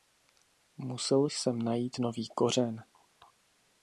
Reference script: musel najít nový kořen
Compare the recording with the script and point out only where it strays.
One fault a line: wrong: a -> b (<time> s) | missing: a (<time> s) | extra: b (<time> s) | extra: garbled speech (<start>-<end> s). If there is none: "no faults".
extra: jsem (1.2 s)